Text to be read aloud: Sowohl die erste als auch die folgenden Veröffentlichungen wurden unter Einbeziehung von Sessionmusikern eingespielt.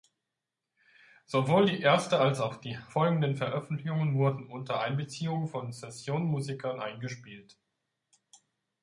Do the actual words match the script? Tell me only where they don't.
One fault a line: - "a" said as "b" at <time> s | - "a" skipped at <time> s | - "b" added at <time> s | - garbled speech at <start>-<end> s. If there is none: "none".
none